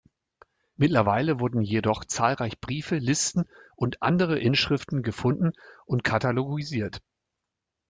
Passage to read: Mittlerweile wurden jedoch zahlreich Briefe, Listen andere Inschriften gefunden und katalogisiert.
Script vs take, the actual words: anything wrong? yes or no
yes